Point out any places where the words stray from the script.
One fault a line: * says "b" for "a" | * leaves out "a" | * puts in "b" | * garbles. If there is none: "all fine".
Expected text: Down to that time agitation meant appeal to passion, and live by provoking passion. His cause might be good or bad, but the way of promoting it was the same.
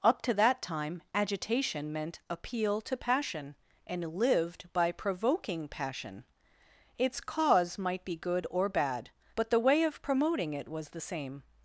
* says "Up" for "Down"
* says "lived" for "live"
* says "Its" for "His"